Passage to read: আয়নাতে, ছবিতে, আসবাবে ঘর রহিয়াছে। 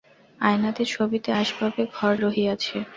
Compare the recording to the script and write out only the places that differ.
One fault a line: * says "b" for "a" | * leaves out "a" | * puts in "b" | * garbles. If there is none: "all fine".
all fine